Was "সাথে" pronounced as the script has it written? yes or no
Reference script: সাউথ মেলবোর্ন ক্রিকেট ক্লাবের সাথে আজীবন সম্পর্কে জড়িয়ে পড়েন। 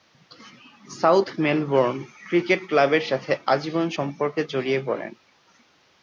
yes